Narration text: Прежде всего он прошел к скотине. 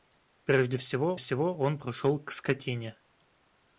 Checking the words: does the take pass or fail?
fail